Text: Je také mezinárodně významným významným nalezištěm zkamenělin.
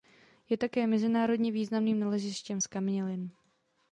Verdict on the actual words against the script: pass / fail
fail